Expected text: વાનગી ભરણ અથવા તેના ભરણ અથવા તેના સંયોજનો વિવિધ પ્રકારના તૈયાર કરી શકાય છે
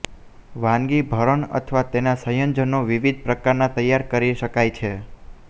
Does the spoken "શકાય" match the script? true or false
true